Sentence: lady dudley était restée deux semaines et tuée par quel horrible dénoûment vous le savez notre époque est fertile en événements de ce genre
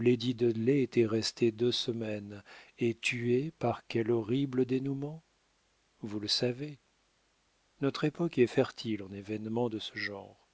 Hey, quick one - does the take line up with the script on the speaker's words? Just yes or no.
yes